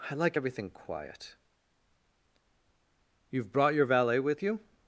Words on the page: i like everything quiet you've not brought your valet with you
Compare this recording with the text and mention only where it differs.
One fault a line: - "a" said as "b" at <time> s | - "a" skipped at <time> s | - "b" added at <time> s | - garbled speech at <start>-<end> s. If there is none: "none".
- "not" skipped at 3.5 s